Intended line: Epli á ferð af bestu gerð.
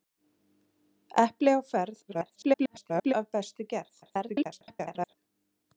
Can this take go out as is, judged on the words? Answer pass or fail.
fail